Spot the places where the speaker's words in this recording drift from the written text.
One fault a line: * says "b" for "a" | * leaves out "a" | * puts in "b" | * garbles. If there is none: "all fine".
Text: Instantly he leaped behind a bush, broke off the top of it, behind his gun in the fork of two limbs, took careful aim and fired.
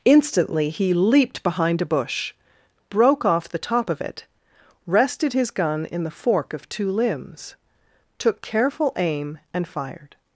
* says "rested" for "behind"